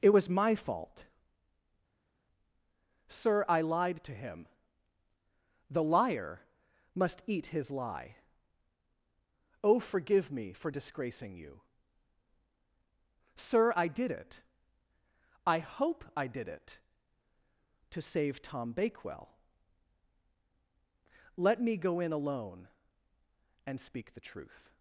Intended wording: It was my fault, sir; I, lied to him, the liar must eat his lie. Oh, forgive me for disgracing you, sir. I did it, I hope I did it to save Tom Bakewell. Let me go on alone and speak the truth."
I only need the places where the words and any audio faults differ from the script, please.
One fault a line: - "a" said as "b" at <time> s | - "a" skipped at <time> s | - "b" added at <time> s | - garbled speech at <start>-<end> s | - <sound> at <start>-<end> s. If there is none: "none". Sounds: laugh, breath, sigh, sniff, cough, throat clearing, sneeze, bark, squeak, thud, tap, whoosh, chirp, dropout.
- "on" said as "in" at 22.0 s